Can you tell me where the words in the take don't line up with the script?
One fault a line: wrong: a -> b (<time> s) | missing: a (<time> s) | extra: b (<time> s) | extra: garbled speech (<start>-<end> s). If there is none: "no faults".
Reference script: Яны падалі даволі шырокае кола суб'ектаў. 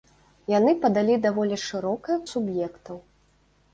missing: кола (2.2 s)